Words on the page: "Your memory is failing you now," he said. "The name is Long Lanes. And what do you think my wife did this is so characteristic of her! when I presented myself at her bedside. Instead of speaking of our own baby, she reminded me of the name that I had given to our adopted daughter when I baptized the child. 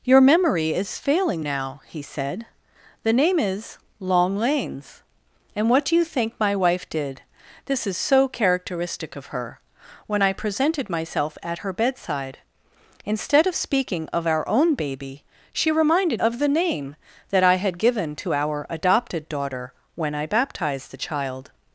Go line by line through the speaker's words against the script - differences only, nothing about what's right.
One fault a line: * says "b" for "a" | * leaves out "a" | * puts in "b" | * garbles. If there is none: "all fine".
* leaves out "you"
* leaves out "me"